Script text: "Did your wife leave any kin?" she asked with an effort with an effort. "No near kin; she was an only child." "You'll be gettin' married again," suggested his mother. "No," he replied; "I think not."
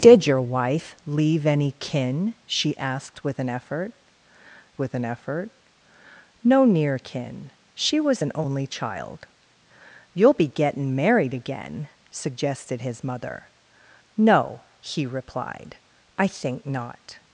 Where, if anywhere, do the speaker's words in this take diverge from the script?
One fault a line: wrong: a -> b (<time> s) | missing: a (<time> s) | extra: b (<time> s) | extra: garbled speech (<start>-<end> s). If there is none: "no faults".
no faults